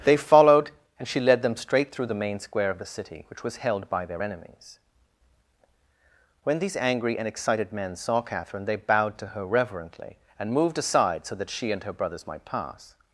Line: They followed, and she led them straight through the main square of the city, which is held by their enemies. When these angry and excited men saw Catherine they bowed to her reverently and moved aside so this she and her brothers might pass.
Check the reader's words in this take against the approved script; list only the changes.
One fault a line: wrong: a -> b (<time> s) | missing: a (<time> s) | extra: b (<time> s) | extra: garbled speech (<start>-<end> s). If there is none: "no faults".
wrong: is -> was (3.4 s)
wrong: this -> that (11.4 s)